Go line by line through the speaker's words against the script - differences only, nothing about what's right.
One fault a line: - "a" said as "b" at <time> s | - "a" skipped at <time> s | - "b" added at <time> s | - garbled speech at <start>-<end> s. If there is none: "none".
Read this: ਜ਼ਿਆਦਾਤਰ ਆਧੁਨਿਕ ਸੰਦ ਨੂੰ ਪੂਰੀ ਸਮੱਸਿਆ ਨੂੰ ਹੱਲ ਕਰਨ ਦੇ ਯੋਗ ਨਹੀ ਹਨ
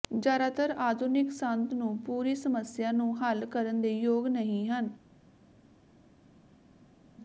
none